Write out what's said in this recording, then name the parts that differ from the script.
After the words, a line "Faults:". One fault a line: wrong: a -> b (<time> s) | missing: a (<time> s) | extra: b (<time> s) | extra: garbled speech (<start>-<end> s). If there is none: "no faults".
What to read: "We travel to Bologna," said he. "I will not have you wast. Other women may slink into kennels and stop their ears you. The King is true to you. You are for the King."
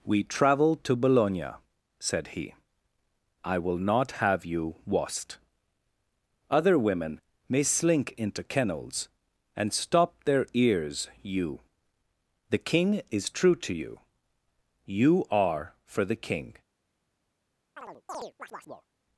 "We travel to Bologna," said he. "I will not have you wast. Other women may slink into kennels and stop their ears you. The King is true to you. You are for the King."
Faults:
no faults